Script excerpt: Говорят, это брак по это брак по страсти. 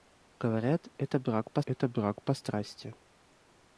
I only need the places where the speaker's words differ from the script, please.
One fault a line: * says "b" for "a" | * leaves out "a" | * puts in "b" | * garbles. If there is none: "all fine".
all fine